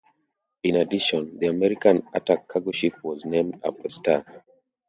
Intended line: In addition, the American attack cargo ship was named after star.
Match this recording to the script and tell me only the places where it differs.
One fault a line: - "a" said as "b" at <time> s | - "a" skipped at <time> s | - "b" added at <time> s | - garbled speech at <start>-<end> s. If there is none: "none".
none